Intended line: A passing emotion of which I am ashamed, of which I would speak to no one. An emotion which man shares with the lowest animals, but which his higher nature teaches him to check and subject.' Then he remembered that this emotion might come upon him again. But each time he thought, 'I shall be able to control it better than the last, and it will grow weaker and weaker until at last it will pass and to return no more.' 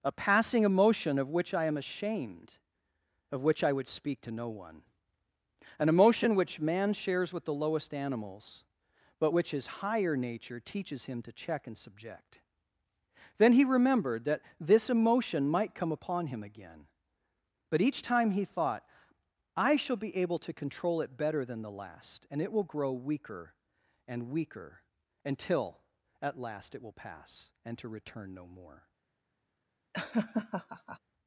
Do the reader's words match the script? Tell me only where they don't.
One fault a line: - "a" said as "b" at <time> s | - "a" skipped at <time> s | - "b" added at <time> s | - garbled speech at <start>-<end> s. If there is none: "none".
none